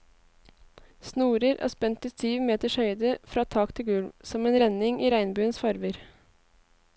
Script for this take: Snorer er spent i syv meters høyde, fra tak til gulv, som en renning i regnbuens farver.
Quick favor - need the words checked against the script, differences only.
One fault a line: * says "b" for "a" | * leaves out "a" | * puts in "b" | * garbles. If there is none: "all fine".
all fine